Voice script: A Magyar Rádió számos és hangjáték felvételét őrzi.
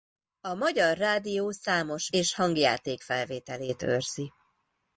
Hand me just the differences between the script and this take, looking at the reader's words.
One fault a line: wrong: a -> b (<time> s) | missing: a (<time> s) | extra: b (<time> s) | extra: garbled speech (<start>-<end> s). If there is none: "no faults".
no faults